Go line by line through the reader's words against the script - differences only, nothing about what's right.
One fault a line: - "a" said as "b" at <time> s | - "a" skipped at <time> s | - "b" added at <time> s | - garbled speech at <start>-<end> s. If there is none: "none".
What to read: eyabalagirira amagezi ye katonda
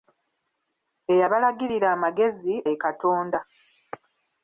none